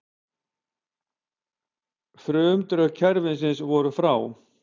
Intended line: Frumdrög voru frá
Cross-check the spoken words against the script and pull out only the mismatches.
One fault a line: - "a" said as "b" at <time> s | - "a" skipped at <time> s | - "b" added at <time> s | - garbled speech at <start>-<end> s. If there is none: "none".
- "kerfisins" added at 3.0 s